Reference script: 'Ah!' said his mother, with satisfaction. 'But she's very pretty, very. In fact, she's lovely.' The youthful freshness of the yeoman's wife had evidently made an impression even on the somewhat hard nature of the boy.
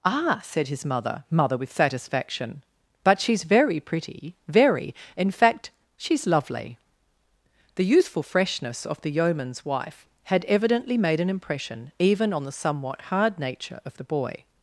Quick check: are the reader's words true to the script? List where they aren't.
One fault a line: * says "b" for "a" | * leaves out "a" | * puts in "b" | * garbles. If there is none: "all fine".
* puts in "mother"